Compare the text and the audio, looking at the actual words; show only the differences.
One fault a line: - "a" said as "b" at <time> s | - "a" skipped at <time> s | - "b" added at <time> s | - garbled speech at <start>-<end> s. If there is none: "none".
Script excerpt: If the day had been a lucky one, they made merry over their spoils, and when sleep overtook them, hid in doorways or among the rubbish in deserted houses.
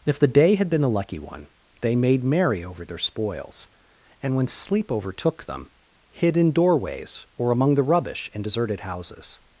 none